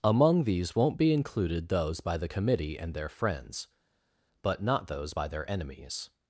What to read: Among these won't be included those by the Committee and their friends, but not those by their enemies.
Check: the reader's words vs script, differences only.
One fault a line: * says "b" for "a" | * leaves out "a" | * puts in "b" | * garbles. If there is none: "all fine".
all fine